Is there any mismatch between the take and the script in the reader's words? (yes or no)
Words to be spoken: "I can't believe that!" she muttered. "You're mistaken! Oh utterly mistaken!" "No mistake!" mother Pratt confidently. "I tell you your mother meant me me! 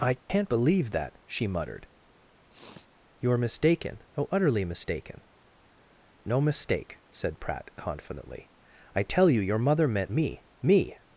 yes